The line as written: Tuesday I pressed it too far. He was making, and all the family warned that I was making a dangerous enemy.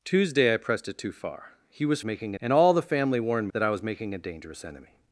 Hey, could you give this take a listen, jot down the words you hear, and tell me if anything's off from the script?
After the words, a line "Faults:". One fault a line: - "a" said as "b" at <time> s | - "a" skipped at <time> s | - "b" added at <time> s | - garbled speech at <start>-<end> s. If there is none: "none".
Tuesday I pressed it too far. He was making, and all the family warned that I was making a dangerous enemy.
Faults:
none